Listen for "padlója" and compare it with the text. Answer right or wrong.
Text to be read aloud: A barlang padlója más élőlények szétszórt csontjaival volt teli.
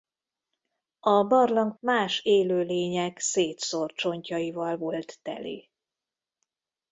wrong